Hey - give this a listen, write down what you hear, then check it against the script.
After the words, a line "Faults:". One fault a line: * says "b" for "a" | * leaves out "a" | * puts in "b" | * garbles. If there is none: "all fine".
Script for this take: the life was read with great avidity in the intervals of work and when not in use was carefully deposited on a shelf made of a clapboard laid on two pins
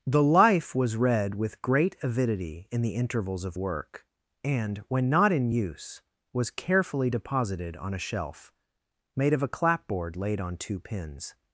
the life was read with great avidity in the intervals of work and when not in use was carefully deposited on a shelf made of a clapboard laid on two pins
Faults:
all fine